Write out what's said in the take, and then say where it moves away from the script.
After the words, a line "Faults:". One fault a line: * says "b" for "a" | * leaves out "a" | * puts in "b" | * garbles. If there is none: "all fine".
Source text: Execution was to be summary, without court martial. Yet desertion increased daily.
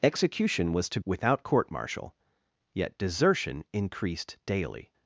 Execution was to without court martial. Yet desertion increased daily.
Faults:
* leaves out "be summary"